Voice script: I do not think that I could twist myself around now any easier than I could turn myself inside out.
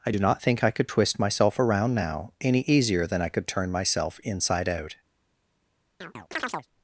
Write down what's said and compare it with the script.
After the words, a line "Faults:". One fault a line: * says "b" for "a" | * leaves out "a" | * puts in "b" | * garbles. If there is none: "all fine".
I do not think I could twist myself around now any easier than I could turn myself inside out.
Faults:
* leaves out "that"